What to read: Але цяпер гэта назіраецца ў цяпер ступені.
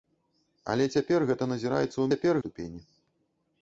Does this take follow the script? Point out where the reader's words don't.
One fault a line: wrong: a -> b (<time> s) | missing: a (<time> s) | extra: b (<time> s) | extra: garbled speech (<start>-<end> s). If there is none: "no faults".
no faults